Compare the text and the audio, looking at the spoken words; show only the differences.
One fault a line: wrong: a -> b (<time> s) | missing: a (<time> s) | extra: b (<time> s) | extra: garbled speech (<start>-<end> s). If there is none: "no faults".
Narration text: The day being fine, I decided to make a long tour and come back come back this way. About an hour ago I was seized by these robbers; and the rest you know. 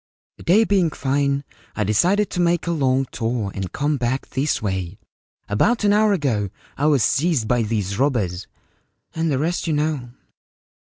missing: come back (4.3 s)